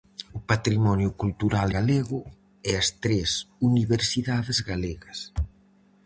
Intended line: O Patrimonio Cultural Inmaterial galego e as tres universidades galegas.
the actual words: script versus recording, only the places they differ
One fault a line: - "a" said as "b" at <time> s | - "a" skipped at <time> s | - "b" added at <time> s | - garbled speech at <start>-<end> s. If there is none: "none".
- "Inmaterial" skipped at 1.7 s